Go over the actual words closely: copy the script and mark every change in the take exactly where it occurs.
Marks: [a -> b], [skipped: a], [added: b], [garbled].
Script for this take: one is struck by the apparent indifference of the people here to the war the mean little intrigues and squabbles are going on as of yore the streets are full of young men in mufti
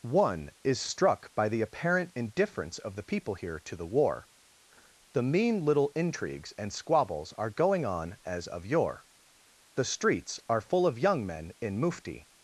one is struck by the apparent indifference of the people here to the war the mean little intrigues and squabbles are going on as of yore the streets are full of young men in mufti